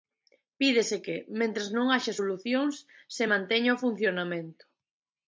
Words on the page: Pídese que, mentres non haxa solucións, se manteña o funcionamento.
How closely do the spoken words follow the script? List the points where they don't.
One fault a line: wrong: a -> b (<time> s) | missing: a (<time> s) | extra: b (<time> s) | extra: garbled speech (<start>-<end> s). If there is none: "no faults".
no faults